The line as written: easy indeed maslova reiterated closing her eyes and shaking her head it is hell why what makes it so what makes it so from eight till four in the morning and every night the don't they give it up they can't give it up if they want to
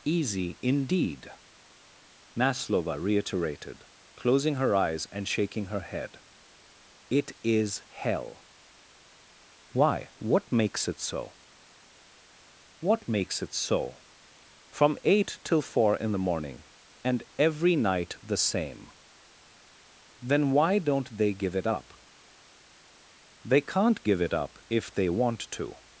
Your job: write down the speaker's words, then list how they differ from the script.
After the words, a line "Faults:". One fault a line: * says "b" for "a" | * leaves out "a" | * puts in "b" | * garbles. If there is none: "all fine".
easy indeed maslova reiterated closing her eyes and shaking her head it is hell why what makes it so what makes it so from eight till four in the morning and every night the same then why don't they give it up they can't give it up if they want to
Faults:
* puts in "same then why"